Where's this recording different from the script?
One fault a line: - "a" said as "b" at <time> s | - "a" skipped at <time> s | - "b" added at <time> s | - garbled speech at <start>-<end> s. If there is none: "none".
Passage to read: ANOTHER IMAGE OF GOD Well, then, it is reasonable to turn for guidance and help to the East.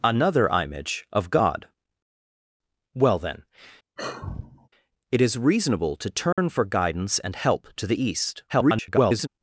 - garbled speech at 8.5-9.3 s